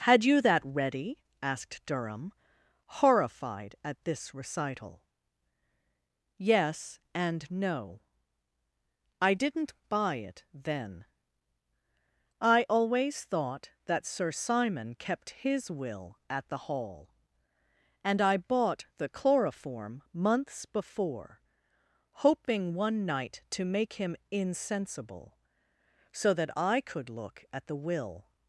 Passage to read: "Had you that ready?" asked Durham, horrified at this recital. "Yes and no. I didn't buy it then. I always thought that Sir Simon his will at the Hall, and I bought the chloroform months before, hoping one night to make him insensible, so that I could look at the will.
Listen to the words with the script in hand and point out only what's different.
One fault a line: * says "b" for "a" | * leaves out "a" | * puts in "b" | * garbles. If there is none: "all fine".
* puts in "kept"